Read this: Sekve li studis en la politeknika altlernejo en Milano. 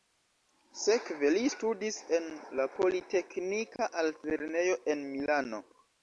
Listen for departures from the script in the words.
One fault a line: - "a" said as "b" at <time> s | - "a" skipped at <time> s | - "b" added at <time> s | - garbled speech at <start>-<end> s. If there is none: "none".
none